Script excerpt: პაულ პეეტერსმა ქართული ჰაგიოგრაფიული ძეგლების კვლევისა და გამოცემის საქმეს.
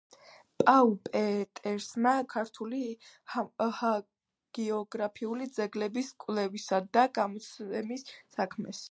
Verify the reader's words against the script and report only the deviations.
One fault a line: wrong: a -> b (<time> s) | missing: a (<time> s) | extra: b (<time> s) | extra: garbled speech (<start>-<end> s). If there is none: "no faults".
no faults